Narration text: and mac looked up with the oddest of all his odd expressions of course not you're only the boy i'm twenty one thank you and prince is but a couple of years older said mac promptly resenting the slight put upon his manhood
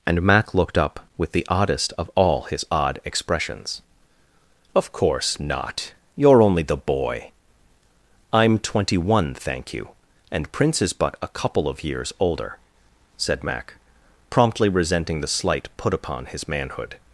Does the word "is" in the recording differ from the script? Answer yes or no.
no